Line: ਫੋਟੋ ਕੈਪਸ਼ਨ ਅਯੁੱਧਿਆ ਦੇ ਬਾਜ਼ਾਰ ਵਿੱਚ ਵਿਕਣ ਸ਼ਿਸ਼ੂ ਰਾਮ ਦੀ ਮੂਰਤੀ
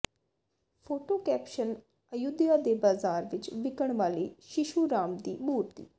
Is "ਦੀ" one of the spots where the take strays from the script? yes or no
no